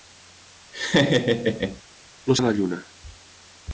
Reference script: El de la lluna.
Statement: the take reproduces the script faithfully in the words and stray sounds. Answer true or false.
false